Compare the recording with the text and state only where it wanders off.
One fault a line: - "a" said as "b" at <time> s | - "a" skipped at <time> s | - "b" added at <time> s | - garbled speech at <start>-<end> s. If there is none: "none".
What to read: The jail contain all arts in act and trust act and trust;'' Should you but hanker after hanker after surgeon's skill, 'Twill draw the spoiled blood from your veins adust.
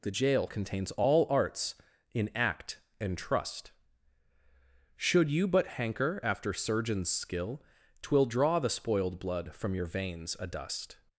- "contain" said as "contains" at 0.4 s
- "act and trust" skipped at 3.7 s
- "hanker after" skipped at 6.5 s